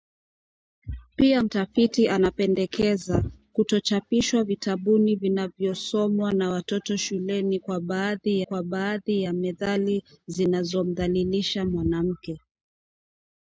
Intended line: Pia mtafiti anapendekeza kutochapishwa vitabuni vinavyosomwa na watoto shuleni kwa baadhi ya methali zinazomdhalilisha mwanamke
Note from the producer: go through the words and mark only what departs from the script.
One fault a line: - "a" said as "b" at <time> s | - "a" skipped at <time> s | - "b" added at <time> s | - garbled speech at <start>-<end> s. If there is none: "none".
- "kwa baadhi" added at 8.4 s